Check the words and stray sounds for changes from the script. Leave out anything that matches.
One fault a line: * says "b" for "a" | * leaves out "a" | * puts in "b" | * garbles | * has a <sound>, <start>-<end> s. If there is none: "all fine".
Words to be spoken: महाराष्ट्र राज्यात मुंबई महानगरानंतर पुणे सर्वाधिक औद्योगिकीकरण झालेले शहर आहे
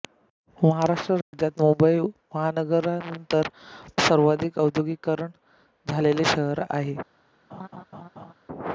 * has a dropout, 1.2-1.3 s
* leaves out "पुणे"
* has a laugh, 7.5-8.3 s